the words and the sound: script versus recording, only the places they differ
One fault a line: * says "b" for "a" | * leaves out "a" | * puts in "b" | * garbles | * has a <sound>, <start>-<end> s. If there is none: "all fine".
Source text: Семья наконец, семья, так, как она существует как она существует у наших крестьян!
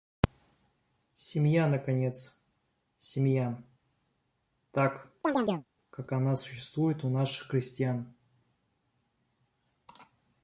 * has a chirp, 5.2-5.7 s
* leaves out "как она существует"